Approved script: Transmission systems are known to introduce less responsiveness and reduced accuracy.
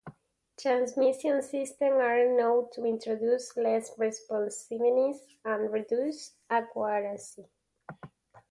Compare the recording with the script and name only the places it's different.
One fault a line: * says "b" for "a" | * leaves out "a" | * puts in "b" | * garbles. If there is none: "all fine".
all fine